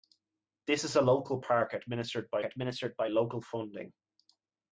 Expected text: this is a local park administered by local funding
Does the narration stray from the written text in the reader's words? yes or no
yes